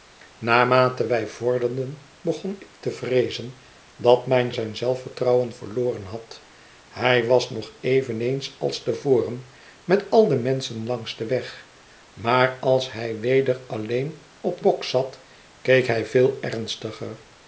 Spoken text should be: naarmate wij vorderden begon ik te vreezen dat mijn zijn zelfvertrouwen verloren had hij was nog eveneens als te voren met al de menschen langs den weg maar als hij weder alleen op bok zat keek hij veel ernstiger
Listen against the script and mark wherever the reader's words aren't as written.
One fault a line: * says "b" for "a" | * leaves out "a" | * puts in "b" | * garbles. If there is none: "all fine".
all fine